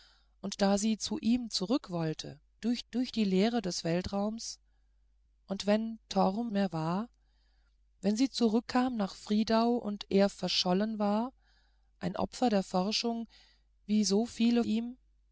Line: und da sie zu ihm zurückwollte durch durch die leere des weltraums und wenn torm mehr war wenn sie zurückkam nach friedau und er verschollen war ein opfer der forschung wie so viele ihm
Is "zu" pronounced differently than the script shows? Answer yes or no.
no